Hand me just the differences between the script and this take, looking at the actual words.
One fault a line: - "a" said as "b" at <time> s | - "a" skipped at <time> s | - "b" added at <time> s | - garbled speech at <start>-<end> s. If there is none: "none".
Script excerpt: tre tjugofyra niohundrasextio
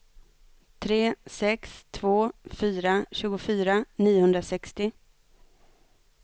- "sex två fyra" added at 1.2 s